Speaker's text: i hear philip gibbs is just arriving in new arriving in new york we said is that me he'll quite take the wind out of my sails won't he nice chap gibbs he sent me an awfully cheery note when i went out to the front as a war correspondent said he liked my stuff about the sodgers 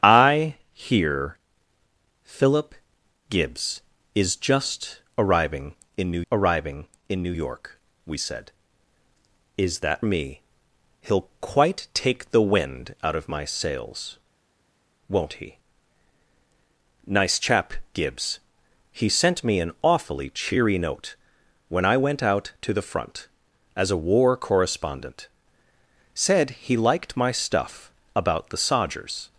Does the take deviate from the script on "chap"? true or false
false